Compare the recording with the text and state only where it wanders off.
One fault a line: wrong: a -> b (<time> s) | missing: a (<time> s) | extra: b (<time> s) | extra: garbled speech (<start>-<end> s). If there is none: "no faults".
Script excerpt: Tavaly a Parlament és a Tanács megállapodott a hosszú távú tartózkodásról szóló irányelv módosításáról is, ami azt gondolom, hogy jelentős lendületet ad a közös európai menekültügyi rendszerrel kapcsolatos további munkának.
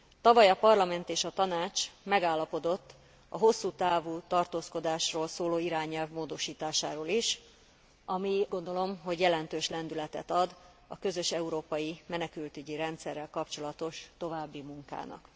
missing: azt (8.4 s)